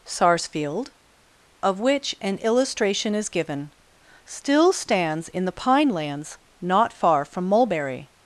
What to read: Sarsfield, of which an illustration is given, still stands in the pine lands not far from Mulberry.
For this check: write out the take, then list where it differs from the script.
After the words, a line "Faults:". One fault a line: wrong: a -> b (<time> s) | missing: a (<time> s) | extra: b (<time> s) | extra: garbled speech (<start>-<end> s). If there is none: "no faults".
Sarsfield, of which an illustration is given, still stands in the pine lands not far from Mulberry.
Faults:
no faults